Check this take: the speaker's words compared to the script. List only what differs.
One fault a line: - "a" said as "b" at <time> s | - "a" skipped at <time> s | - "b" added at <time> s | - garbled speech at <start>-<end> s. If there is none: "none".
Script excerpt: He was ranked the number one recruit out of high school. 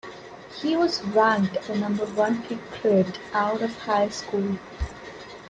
none